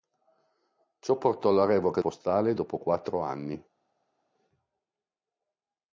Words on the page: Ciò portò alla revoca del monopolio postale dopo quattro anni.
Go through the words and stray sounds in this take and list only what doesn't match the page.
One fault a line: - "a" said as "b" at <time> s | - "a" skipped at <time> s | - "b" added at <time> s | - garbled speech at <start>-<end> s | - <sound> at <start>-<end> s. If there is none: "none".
- "del monopolio" skipped at 2.0 s